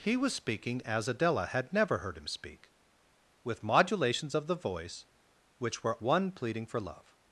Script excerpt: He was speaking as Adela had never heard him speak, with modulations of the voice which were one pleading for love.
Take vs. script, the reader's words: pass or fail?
pass